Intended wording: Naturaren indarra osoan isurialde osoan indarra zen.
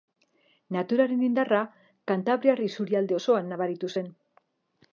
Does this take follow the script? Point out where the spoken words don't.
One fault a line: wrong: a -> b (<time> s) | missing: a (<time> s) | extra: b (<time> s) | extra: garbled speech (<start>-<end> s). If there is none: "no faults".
wrong: osoan -> kantabriar (2.1 s)
wrong: indarra -> nabaritu (3.5 s)